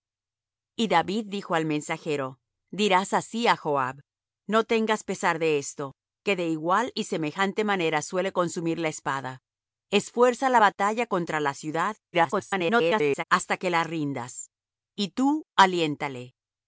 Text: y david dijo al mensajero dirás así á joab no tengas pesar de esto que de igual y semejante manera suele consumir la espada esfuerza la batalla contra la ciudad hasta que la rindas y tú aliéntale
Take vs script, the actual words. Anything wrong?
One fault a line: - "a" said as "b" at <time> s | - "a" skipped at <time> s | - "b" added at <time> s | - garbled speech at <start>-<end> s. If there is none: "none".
- garbled speech at 12.1-13.2 s